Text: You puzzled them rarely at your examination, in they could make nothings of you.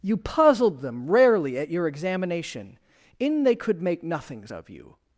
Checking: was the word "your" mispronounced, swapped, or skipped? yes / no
no